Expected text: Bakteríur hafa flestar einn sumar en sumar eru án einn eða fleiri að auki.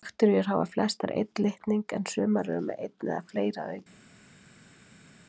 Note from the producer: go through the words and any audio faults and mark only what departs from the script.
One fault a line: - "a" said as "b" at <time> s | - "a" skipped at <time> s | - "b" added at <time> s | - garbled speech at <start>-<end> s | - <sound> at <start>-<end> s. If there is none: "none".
- "sumar" said as "litning" at 1.5 s
- "án" said as "með" at 2.7 s